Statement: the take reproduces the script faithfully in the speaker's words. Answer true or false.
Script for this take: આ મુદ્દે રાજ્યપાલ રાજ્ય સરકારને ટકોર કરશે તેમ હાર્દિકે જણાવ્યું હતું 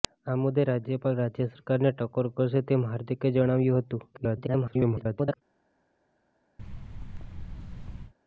false